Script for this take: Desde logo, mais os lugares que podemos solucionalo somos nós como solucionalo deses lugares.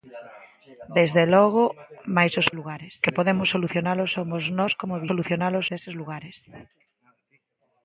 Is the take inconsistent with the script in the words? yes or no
no